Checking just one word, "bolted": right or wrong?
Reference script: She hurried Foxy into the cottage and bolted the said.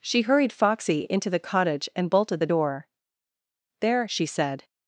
right